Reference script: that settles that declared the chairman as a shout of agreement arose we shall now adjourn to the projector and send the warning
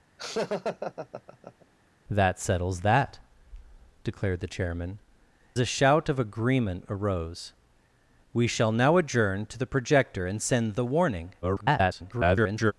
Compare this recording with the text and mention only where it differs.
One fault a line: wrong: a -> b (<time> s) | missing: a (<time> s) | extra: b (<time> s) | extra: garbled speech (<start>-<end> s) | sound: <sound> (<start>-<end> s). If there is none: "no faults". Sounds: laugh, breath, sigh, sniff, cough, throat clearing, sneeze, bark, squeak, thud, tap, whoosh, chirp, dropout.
sound: laugh (0.2-1.7 s)
missing: as (5.0 s)
extra: garbled speech (11.4-12.7 s)